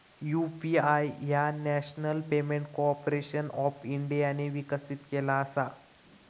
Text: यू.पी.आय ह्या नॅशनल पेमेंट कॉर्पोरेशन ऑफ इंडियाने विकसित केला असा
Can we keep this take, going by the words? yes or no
yes